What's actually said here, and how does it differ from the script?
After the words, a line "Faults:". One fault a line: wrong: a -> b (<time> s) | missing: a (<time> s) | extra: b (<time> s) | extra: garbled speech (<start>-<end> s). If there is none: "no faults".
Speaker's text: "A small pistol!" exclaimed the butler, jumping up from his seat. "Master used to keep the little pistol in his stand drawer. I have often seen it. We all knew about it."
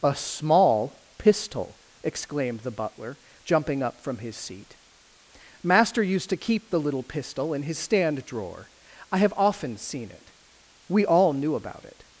"A small pistol!" exclaimed the butler, jumping up from his seat. "Master used to keep the little pistol in his stand drawer. I have often seen it. We all knew about it."
Faults:
no faults